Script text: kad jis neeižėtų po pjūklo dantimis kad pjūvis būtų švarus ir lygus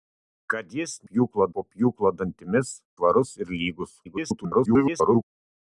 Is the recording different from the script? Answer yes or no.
yes